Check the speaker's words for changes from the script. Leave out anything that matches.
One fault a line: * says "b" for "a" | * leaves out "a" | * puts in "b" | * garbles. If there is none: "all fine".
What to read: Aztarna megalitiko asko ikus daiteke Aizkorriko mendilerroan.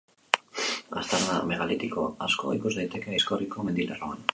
all fine